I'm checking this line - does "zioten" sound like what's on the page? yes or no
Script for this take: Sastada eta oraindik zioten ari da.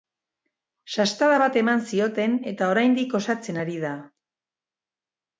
no